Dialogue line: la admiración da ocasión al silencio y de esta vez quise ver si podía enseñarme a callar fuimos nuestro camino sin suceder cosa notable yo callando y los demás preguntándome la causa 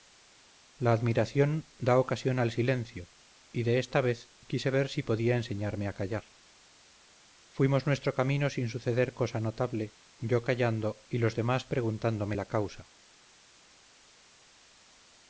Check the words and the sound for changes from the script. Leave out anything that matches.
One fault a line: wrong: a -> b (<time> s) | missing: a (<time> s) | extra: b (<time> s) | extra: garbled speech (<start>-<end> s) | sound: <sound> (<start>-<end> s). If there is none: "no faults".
no faults